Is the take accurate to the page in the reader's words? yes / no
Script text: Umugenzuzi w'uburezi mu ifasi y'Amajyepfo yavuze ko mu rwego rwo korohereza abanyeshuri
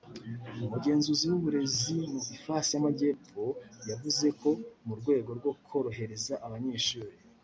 yes